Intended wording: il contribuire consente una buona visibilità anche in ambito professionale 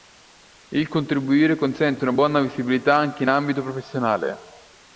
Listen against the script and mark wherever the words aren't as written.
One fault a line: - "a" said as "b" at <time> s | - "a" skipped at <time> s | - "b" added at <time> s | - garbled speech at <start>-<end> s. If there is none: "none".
none